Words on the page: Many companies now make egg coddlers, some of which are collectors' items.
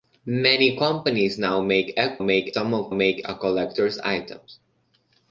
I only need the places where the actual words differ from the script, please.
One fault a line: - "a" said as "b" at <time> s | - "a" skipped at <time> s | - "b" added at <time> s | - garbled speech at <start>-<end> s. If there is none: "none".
- "coddlers" said as "make" at 2.2 s
- "which" said as "make" at 2.9 s